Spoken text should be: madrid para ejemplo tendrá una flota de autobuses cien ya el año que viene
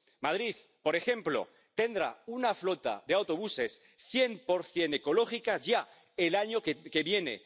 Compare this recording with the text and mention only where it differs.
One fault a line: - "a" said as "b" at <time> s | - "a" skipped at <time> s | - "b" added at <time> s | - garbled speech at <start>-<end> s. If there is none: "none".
- "para" said as "por" at 0.8 s
- "por cien ecológica" added at 4.4 s